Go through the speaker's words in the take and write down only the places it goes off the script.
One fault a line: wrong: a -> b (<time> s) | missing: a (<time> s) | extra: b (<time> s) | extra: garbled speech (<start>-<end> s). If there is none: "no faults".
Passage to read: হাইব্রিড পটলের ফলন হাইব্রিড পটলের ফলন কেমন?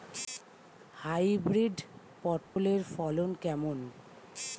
missing: হাইব্রিড পটলের ফলন (3.3 s)